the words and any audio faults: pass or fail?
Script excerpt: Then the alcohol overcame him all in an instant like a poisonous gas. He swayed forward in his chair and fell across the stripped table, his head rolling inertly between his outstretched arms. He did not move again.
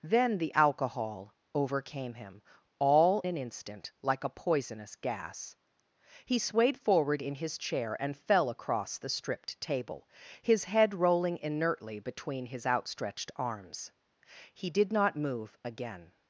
fail